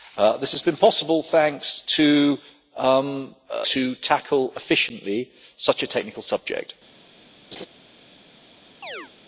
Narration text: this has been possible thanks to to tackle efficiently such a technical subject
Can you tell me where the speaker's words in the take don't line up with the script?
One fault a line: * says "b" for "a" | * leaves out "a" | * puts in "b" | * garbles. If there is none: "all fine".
all fine